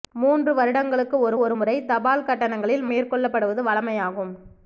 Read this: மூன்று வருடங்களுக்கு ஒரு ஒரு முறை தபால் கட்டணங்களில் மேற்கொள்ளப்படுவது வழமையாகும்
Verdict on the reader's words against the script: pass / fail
pass